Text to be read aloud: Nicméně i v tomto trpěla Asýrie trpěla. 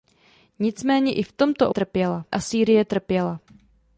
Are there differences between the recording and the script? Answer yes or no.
no